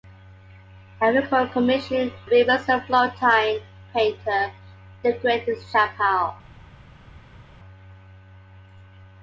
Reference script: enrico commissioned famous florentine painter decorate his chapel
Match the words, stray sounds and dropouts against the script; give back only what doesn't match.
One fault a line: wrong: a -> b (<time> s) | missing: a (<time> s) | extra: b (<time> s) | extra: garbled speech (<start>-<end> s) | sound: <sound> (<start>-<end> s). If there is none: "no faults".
no faults